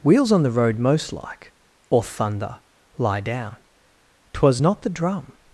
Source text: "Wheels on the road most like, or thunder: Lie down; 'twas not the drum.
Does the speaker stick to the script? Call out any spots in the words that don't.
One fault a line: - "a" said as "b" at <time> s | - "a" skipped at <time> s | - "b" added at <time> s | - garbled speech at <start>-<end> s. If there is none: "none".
none